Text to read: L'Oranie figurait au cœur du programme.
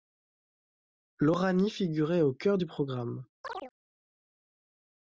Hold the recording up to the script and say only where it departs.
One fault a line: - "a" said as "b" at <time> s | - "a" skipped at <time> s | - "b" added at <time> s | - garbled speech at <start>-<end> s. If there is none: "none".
none